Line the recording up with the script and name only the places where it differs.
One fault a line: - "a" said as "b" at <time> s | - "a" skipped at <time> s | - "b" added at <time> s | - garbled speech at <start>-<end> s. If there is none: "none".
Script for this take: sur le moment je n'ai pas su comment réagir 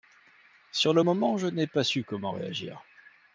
none